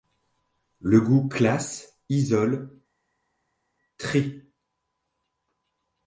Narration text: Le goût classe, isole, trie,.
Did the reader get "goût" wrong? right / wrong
right